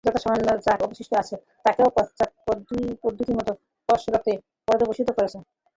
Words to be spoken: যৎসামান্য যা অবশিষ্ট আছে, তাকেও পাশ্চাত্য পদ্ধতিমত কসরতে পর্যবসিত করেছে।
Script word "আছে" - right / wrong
right